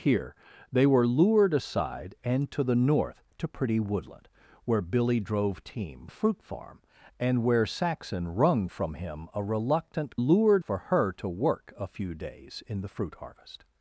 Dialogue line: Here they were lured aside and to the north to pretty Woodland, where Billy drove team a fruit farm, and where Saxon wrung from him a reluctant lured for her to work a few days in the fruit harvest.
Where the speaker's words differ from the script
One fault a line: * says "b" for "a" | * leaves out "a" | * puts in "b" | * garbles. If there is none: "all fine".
all fine